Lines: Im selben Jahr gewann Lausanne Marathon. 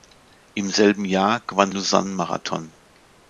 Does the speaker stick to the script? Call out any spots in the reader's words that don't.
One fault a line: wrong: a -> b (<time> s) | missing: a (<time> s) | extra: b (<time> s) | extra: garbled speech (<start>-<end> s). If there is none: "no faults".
no faults